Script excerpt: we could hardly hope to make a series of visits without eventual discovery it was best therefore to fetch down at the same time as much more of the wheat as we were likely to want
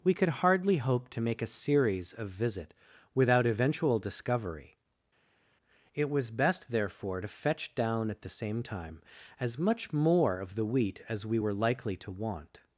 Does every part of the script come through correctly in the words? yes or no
no